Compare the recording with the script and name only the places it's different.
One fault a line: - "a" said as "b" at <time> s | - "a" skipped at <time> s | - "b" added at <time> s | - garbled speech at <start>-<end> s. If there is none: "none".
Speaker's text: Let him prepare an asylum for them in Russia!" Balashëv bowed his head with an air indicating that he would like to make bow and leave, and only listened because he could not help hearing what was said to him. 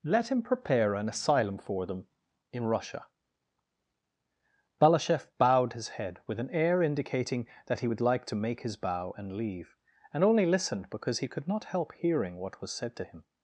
- "his" added at 8.6 s